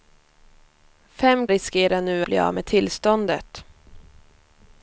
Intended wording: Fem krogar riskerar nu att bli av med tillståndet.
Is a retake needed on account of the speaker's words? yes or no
yes